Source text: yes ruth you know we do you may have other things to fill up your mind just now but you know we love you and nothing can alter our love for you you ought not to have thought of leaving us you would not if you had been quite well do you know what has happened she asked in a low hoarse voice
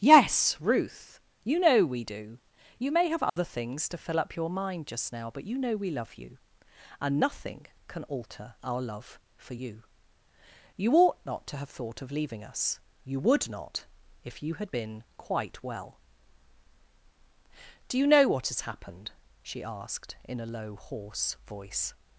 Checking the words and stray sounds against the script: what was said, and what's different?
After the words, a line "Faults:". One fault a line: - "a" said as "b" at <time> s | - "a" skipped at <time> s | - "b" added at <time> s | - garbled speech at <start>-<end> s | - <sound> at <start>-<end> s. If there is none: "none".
yes ruth you know we do you may have other things to fill up your mind just now but you know we love you and nothing can alter our love for you you ought not to have thought of leaving us you would not if you had been quite well do you know what has happened she asked in a low hoarse voice
Faults:
- dropout at 3.3-3.4 s